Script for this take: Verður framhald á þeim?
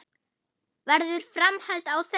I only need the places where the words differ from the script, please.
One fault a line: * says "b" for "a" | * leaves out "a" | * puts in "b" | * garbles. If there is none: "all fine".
all fine